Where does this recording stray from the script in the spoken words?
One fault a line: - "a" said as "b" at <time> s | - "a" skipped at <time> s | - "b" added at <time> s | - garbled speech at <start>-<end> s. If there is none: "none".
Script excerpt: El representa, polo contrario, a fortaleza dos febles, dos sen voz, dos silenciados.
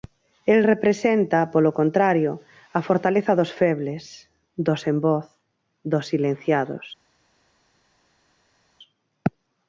none